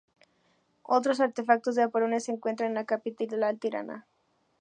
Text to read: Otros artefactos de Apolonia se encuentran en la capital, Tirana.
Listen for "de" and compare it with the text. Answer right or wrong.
right